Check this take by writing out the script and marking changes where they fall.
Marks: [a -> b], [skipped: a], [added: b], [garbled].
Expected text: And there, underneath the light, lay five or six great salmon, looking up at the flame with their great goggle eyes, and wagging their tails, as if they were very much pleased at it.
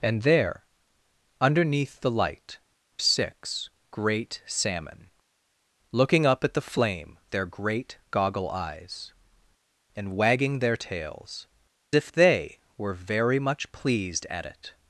And there, underneath the light, [skipped: lay five or] six great salmon, looking up at the flame [skipped: with] their great goggle eyes, and wagging their tails, [skipped: as] if they were very much pleased at it.